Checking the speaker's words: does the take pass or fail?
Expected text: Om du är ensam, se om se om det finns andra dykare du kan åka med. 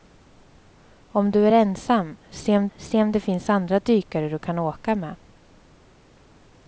pass